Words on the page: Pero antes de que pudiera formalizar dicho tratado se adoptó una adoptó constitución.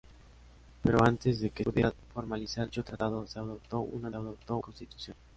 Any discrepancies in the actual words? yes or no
no